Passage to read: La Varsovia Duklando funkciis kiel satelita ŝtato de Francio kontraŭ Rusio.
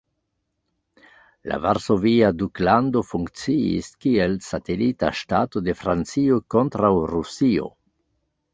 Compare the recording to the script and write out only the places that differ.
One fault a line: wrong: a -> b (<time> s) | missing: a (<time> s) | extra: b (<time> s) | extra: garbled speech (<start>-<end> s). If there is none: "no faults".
no faults